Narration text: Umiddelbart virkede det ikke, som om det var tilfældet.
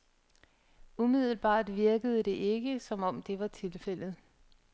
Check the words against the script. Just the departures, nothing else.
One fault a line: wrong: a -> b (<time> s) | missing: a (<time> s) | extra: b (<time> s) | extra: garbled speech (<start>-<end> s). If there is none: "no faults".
no faults